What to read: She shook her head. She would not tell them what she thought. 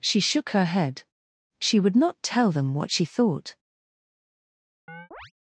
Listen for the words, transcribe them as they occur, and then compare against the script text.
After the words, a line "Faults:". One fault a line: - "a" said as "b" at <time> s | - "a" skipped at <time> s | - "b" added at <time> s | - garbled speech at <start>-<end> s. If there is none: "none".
She shook her head. She would not tell them what she thought.
Faults:
none